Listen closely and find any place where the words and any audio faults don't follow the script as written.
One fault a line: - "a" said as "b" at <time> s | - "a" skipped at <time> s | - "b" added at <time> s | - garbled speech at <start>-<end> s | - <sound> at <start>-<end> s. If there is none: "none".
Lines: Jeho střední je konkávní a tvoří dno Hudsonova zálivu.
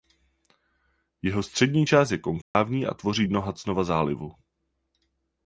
- "část" added at 1.8 s
- dropout at 2.4-2.5 s